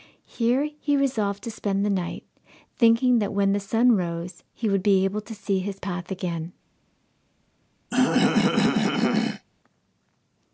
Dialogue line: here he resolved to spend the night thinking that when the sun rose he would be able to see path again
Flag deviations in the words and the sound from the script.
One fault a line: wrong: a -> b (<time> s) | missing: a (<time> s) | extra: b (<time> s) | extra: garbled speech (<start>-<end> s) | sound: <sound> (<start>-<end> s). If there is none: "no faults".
extra: his (5.6 s)
sound: throat clearing (7.9-9.5 s)